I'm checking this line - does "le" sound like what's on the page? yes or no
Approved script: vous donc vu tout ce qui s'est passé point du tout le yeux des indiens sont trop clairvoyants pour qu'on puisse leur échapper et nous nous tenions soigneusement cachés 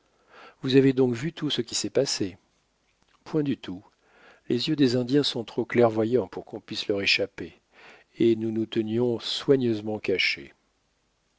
no